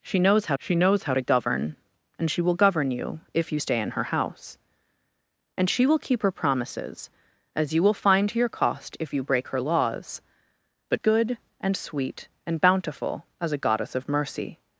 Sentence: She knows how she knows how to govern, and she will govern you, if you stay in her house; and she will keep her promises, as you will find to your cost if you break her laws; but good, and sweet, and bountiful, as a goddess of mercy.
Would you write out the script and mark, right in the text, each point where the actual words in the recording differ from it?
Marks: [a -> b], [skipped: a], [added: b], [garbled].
She knows how she knows how to govern, and she will govern you, if you stay in her house; and she will keep her promises, as you will find to your cost if you break her laws; but good, and sweet, and bountiful, as a goddess of mercy.